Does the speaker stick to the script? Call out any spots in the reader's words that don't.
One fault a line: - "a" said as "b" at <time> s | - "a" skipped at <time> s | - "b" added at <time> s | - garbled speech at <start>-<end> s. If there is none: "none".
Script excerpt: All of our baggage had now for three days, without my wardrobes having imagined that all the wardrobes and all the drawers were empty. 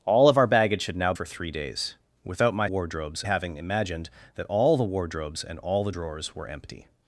none